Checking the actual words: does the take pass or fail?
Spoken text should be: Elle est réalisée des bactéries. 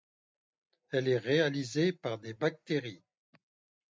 fail